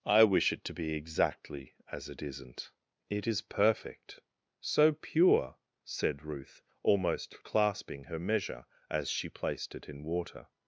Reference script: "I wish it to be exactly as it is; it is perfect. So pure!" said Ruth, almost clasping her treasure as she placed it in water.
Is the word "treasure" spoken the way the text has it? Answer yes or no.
no